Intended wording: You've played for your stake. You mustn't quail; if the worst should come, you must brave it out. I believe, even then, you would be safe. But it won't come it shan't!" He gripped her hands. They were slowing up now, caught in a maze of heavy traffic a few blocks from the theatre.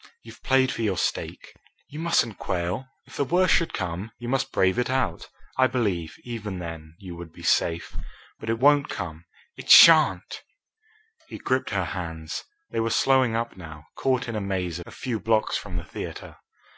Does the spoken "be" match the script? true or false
true